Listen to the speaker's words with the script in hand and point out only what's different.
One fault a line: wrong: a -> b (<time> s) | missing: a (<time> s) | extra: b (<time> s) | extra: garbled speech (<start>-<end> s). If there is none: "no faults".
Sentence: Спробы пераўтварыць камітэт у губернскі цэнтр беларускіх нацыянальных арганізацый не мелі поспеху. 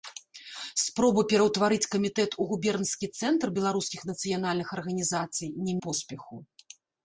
missing: мелі (5.7 s)